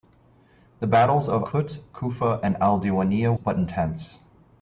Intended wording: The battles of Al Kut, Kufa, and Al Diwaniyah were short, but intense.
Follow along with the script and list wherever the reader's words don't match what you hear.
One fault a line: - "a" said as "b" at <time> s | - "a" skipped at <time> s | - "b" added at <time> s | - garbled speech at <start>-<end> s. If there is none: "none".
- "Al" skipped at 1.4 s
- "were short" skipped at 3.3 s